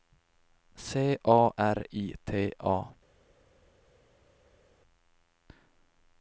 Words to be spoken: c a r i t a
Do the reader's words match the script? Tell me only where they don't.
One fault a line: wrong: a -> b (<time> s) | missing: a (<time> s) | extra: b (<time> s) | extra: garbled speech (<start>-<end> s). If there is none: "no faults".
no faults